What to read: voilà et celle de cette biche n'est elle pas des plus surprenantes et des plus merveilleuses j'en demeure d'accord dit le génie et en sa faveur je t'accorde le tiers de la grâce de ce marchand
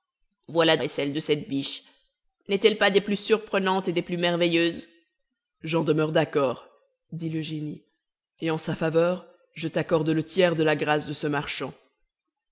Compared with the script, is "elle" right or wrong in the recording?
right